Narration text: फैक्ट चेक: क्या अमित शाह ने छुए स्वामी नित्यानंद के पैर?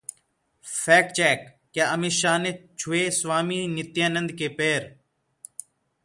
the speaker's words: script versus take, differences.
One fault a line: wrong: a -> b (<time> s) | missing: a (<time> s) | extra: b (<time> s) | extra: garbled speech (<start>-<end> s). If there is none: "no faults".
no faults